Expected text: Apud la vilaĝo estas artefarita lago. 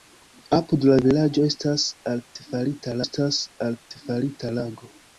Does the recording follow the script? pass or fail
fail